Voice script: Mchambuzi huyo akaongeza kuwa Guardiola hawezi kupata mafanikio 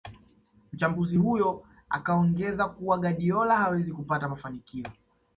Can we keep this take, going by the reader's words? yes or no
yes